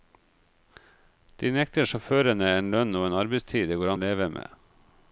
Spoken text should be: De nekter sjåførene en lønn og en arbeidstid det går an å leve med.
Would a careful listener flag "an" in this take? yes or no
yes